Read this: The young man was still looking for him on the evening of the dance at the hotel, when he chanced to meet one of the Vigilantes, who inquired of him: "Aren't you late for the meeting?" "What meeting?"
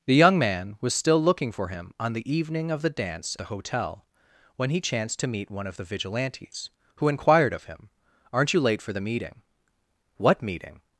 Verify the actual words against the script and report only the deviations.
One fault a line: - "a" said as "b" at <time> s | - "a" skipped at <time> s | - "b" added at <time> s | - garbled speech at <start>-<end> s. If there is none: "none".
- "at" skipped at 3.4 s